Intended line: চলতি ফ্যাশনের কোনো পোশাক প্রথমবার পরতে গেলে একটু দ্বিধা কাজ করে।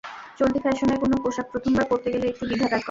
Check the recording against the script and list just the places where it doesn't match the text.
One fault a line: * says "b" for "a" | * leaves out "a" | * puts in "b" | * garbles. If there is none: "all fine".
all fine